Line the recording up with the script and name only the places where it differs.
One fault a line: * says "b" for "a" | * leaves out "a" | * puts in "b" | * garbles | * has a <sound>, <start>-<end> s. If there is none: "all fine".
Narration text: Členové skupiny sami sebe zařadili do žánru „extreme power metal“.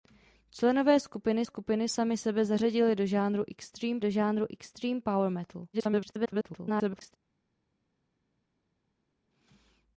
* puts in "skupiny"
* puts in "do žánru extreme"
* garbles